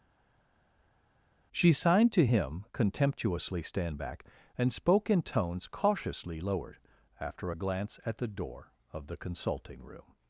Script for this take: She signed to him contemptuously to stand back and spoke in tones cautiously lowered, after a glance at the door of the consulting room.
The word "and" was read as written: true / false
true